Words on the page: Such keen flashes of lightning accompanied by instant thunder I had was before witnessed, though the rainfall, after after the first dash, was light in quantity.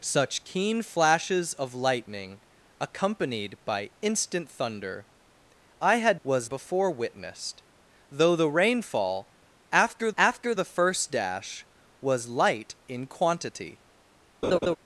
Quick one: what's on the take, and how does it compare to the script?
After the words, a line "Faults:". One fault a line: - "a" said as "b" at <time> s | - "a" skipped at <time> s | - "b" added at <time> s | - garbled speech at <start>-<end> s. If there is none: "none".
Such keen flashes of lightning accompanied by instant thunder I had was before witnessed, though the rainfall, after after the first dash, was light in quantity.
Faults:
none